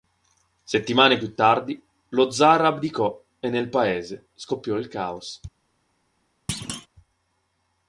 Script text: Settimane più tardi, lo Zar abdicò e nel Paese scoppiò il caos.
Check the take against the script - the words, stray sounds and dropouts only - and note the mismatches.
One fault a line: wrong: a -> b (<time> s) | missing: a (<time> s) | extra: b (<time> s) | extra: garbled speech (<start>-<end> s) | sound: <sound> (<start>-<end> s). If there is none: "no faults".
sound: thud (6.5-6.9 s)